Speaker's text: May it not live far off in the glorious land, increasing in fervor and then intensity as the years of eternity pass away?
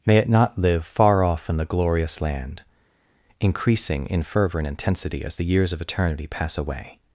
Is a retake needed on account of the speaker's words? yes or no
yes